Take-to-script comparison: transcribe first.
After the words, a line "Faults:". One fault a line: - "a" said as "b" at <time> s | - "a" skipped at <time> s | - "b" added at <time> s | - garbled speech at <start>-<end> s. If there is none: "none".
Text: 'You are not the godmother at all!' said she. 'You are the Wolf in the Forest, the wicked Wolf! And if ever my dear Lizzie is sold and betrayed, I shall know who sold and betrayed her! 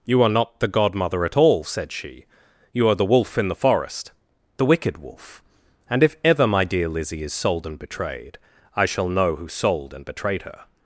'You are not the godmother at all!' said she. 'You are the Wolf in the Forest, the wicked Wolf! And if ever my dear Lizzie is sold and betrayed, I shall know who sold and betrayed her!
Faults:
none